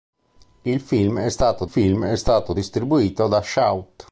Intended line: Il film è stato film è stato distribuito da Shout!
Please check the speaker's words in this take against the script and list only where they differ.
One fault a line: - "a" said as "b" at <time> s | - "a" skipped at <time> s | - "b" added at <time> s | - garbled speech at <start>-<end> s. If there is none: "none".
none